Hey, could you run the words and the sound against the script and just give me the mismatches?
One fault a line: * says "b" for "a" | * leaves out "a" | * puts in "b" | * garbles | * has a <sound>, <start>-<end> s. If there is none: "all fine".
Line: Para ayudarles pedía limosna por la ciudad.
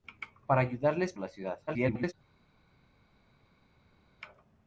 * leaves out "pedía limosna por"
* garbles